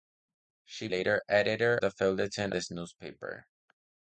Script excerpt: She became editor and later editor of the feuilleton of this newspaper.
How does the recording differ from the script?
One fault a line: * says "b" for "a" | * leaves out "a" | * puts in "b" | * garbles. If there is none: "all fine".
* leaves out "became editor and"
* leaves out "of"
* leaves out "of"